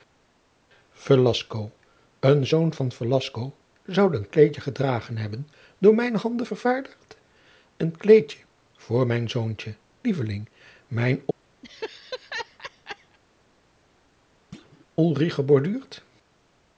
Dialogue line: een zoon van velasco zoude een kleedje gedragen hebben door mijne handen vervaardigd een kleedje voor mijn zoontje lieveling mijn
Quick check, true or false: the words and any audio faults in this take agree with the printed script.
false